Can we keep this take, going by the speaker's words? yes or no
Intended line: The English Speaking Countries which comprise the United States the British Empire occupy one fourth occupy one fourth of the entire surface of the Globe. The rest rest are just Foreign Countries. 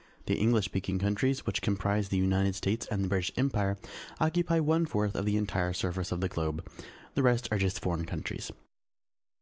no